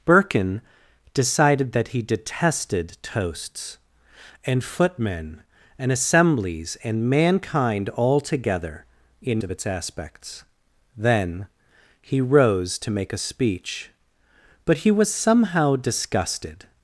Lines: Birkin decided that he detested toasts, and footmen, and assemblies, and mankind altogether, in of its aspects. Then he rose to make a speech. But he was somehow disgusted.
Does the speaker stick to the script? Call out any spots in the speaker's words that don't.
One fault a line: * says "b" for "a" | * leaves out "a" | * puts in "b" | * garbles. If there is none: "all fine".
all fine